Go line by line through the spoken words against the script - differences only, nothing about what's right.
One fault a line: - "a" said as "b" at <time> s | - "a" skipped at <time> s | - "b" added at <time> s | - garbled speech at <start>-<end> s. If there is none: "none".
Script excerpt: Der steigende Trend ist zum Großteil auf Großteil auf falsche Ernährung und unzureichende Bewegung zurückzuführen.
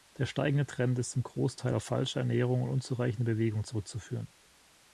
- "Großteil auf" skipped at 1.8 s